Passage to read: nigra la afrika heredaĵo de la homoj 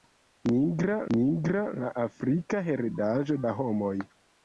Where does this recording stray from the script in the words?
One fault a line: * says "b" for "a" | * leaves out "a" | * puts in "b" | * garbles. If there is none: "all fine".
* puts in "nigra"
* leaves out "de"